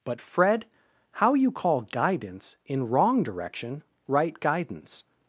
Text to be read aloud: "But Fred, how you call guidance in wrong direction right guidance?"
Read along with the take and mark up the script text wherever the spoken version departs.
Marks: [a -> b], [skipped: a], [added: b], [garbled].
"But Fred, how you call guidance in wrong direction right guidance?"